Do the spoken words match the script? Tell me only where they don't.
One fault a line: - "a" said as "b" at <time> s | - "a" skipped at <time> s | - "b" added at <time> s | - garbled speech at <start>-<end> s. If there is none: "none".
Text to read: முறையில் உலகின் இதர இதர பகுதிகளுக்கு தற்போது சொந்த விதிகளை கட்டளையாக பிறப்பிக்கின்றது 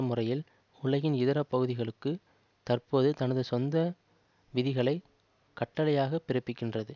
- "இதர" skipped at 1.4 s
- "தனது" added at 3.1 s